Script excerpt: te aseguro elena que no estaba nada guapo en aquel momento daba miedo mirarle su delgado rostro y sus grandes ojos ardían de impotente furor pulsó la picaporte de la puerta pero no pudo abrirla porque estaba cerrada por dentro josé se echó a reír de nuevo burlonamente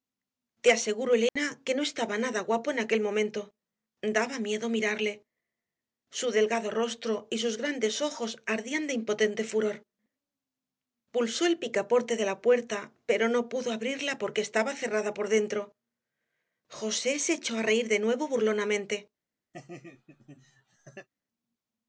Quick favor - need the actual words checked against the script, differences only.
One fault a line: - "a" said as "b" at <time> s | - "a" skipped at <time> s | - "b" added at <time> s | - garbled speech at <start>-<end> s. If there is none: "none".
- "la" said as "el" at 11.4 s